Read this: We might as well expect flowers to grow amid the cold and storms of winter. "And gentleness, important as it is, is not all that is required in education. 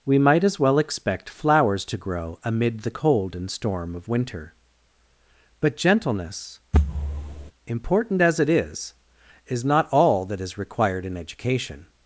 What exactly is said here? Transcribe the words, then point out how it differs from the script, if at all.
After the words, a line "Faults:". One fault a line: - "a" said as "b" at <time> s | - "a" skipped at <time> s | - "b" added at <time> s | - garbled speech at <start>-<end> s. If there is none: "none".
We might as well expect flowers to grow amid the cold and storm of winter. "But gentleness, important as it is, is not all that is required in education.
Faults:
- "storms" said as "storm" at 3.5 s
- "And" said as "But" at 5.6 s